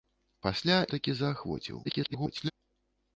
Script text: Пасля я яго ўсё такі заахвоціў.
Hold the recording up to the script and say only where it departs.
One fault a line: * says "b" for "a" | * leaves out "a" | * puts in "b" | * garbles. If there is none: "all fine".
* leaves out "я яго ўсё"
* garbles